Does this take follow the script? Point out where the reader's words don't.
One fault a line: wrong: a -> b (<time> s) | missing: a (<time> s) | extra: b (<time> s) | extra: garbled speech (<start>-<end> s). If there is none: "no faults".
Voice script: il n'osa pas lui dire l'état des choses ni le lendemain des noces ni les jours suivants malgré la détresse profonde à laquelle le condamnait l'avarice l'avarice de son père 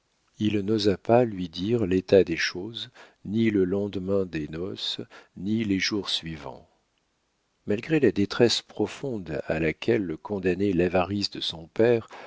missing: l'avarice (11.3 s)